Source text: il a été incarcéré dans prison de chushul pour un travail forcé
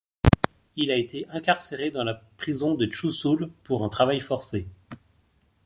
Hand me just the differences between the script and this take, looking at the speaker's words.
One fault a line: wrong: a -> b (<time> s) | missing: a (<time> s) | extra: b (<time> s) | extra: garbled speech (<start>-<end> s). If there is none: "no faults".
extra: la (2.0 s)